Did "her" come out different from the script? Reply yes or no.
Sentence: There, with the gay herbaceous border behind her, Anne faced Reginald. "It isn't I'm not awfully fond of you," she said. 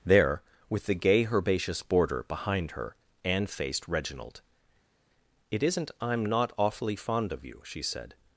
no